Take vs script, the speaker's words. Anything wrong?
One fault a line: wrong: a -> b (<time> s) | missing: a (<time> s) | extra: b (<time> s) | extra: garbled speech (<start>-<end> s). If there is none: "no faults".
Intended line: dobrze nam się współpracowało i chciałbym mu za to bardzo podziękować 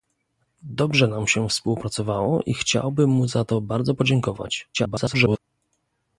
extra: garbled speech (4.7-5.4 s)